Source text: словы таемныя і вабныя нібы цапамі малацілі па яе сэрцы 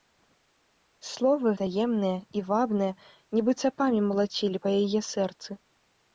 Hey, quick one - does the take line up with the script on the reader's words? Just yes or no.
yes